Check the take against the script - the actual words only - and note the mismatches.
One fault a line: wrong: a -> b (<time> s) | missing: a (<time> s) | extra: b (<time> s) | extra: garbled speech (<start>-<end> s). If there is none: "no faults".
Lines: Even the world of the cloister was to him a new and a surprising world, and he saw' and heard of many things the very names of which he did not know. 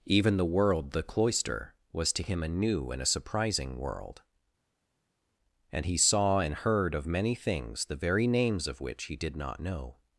missing: of (0.9 s)